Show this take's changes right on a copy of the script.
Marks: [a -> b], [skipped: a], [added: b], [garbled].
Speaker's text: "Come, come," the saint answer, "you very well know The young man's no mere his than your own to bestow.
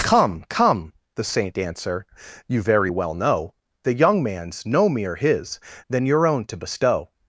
"Come, come," the saint answer, "you very well know The young man's no mere his than your own to bestow.